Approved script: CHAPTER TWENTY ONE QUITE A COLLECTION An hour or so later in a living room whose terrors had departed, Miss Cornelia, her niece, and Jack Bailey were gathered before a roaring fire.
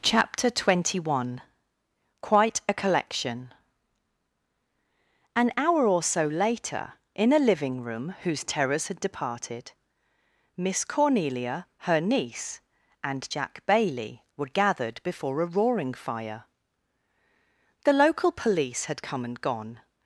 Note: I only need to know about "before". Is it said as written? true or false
true